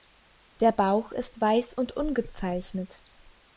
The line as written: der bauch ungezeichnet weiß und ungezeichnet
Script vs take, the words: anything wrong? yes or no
yes